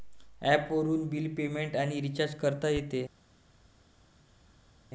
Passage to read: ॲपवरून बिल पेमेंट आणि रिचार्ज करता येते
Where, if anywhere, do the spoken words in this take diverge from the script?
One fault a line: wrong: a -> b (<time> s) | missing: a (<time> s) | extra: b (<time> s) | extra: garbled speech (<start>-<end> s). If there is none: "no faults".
no faults